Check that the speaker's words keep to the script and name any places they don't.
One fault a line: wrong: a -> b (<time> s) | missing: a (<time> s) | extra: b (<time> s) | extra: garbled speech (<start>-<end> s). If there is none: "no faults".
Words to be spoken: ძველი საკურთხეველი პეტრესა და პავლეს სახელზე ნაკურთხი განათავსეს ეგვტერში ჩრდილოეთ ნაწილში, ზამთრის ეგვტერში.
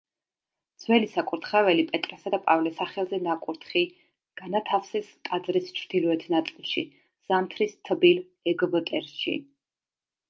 wrong: ეგვტერში -> ტაძრის (5.3 s)
extra: თბილ (7.9 s)